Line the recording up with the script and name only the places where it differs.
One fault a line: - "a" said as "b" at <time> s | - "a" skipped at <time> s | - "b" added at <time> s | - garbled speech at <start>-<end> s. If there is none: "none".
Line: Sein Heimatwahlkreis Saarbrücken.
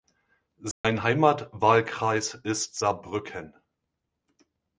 - "ist" added at 2.3 s